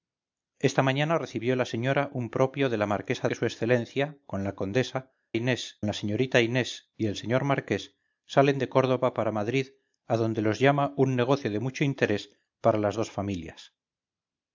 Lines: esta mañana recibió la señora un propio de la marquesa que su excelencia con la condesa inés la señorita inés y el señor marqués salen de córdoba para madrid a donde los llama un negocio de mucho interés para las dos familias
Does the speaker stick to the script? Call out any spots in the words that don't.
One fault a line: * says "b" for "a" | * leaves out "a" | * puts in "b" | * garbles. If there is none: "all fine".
all fine